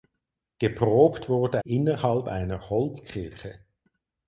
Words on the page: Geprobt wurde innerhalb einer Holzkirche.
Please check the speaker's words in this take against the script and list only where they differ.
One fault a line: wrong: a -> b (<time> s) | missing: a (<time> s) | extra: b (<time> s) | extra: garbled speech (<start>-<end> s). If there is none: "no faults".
no faults